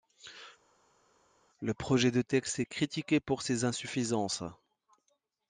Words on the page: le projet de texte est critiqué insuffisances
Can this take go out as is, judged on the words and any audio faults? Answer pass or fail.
fail